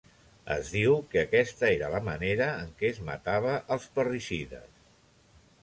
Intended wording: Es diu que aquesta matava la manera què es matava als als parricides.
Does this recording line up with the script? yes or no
no